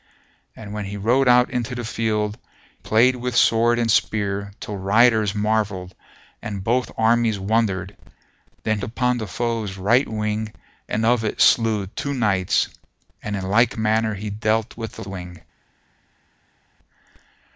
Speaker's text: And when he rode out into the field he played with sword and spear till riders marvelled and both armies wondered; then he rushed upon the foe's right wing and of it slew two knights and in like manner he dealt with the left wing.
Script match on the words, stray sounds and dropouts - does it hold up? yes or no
no